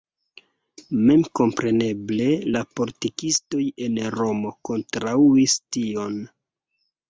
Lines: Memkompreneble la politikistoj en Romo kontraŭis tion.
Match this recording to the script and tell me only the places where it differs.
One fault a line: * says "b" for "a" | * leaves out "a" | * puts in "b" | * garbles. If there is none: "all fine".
all fine